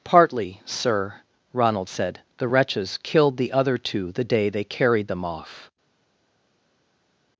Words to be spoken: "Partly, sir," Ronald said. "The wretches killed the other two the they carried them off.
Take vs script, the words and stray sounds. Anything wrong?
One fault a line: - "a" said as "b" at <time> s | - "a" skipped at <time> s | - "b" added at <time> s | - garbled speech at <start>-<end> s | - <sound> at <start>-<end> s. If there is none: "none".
- "day" added at 4.2 s